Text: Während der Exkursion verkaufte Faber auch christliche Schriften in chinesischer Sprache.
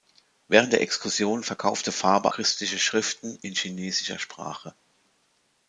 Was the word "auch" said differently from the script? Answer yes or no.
yes